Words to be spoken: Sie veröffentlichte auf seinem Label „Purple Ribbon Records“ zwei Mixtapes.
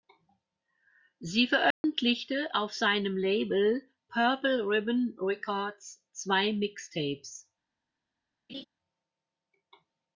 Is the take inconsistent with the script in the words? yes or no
no